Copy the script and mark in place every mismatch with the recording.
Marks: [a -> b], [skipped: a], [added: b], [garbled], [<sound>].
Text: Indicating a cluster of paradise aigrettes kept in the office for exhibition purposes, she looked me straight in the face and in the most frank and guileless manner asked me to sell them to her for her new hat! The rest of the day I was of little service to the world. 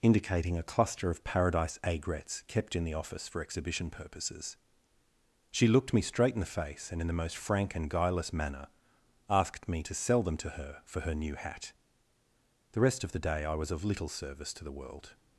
Indicating a cluster of paradise aigrettes kept in the office for exhibition purposes, she looked me straight in the face and in the most frank and guileless manner asked me to sell them to her for her new hat! The rest of the day I was of little service to the world.